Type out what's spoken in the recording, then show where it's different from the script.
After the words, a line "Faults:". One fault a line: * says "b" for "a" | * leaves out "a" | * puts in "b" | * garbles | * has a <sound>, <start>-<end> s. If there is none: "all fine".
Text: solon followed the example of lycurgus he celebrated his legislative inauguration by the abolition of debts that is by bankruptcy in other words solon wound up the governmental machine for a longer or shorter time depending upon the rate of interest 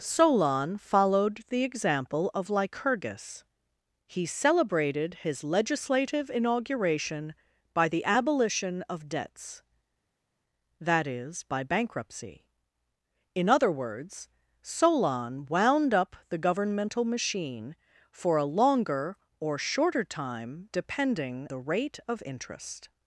solon followed the example of lycurgus he celebrated his legislative inauguration by the abolition of debts that is by bankruptcy in other words solon wound up the governmental machine for a longer or shorter time depending the rate of interest
Faults:
* leaves out "upon"